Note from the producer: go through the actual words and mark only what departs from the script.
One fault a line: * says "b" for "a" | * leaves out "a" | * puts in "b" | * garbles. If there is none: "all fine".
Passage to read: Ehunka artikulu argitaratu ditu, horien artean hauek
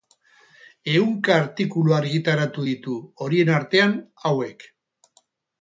all fine